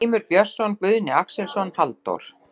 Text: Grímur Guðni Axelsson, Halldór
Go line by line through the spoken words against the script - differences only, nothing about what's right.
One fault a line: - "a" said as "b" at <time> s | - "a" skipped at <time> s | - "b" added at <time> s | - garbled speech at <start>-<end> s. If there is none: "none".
- "Björnsson" added at 0.3 s